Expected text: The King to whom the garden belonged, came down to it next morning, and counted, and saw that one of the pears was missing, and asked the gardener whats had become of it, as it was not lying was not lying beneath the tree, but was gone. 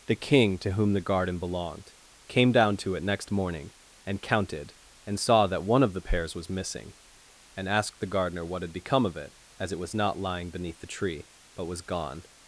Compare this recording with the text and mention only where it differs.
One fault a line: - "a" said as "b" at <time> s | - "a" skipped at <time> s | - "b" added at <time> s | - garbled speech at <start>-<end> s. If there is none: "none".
- "whats" said as "what" at 8.4 s
- "was not lying" skipped at 10.5 s